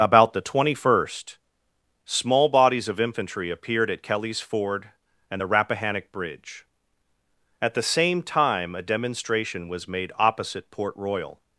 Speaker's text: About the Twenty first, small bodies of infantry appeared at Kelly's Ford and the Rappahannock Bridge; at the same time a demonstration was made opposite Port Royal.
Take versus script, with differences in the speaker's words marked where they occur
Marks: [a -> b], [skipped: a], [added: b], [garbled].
About the Twenty first, small bodies of infantry appeared at Kelly's Ford and the Rappahannock Bridge; at the same time a demonstration was made opposite Port Royal.